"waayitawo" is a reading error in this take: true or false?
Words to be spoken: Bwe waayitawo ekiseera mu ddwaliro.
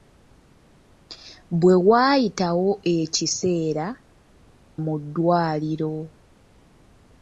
false